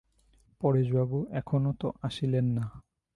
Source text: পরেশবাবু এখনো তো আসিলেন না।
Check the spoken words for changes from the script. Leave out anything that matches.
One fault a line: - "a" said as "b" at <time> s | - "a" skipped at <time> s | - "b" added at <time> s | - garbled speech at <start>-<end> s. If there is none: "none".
none